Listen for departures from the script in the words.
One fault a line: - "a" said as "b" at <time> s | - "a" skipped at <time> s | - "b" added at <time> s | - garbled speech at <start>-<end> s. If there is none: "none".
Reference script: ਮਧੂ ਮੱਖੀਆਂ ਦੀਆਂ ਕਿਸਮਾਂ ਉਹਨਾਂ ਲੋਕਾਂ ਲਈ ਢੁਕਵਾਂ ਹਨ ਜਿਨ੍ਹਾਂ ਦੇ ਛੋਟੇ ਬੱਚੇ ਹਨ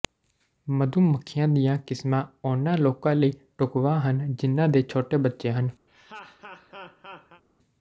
none